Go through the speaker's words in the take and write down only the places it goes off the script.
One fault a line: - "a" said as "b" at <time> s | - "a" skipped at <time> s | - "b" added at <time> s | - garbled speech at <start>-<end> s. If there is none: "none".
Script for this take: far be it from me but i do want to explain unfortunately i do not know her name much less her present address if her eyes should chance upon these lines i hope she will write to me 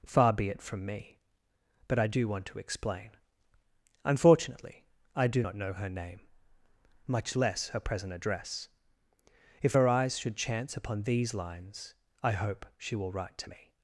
none